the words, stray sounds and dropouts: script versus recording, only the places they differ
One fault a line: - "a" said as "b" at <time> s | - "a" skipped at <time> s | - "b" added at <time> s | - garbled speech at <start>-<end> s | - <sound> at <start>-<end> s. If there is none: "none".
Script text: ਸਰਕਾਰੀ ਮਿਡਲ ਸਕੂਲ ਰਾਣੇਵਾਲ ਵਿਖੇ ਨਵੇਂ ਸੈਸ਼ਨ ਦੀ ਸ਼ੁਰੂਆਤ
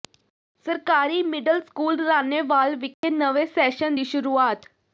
- dropout at 2.9-3.0 s